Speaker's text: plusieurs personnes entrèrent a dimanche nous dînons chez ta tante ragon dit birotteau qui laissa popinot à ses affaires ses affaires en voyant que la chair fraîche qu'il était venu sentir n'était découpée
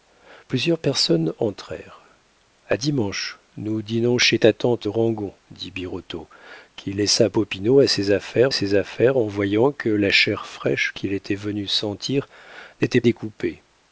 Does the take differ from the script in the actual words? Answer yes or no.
no